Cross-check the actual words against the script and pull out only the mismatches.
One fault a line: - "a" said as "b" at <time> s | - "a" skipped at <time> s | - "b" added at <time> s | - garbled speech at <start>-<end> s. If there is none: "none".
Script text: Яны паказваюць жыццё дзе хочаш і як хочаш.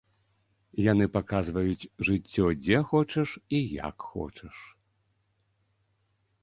none